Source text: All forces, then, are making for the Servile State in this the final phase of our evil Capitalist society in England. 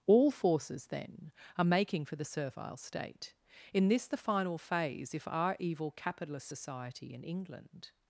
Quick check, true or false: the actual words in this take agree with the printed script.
false